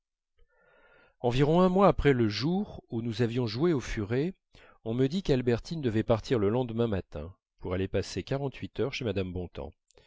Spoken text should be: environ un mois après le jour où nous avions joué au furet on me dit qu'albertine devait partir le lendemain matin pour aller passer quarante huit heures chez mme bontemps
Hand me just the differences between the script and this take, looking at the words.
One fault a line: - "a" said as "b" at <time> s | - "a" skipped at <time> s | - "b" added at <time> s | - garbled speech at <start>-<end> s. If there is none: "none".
none